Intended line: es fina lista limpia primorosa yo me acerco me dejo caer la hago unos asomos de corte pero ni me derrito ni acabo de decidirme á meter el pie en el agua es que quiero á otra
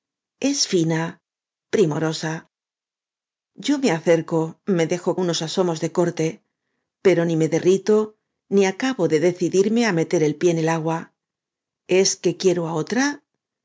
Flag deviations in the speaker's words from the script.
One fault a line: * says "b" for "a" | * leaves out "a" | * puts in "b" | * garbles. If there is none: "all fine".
* leaves out "lista limpia"
* leaves out "caer la hago"